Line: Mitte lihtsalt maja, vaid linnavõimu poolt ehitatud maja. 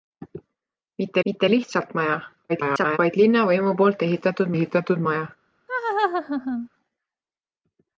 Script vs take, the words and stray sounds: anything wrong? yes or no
yes